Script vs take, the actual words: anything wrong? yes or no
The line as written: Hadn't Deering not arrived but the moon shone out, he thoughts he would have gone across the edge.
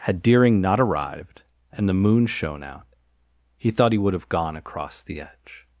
yes